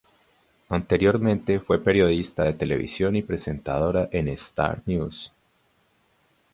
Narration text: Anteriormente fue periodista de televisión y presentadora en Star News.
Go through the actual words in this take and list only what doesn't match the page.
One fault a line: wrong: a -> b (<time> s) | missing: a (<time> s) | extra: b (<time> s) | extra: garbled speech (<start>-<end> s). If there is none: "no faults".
no faults